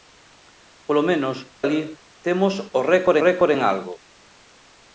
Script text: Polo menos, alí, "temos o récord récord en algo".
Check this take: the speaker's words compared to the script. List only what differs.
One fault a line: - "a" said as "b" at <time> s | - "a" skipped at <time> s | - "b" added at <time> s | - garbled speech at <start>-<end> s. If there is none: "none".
none